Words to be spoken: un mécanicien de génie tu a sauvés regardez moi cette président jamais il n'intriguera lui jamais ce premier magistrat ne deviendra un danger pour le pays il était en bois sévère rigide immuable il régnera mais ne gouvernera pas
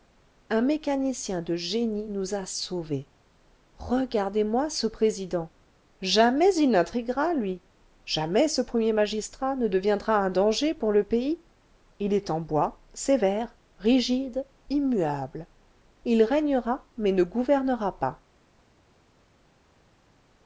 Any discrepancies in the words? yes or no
yes